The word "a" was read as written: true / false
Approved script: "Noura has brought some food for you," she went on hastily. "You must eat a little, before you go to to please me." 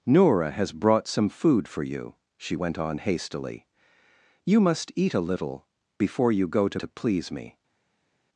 true